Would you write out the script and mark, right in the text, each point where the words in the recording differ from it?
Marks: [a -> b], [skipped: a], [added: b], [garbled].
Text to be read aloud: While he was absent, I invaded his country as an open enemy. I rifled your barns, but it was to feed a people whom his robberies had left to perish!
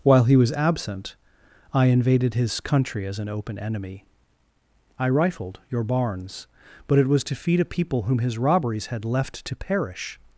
While he was absent, I invaded his country as an open enemy. I rifled your barns, but it was to feed a people whom his robberies had left to perish!